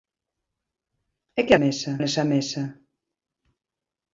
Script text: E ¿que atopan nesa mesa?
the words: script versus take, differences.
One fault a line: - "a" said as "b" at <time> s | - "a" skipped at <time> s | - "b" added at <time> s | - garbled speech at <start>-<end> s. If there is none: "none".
- "atopan" said as "mesa" at 1.6 s